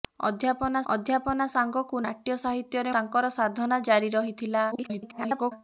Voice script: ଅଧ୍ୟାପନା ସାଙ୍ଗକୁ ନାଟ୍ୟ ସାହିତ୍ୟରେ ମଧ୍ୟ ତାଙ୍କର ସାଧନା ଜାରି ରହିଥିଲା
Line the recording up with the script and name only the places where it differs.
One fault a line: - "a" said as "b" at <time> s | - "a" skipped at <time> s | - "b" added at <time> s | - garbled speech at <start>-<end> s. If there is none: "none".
- "ଅଧ୍ୟାପନା" added at 0.9 s
- "ମଧ୍ୟ" skipped at 2.9 s
- garbled speech at 4.7-5.5 s